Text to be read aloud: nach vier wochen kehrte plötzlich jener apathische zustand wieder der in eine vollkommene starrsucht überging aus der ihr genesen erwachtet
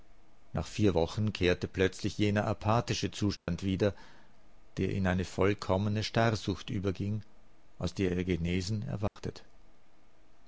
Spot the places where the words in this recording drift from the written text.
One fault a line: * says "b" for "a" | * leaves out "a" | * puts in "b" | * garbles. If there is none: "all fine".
all fine